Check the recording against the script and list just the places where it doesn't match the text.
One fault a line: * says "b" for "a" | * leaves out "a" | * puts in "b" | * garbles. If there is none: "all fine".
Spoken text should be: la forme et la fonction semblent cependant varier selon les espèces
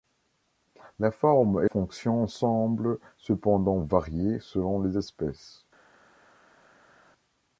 * leaves out "la"